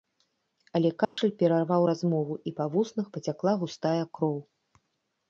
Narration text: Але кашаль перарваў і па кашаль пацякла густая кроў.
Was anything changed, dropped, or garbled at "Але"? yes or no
no